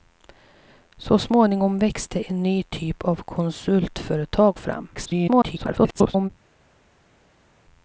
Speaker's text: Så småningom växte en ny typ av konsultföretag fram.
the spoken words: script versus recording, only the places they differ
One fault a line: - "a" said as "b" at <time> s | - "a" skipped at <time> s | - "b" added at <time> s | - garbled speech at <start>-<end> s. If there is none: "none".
- garbled speech at 4.9-6.3 s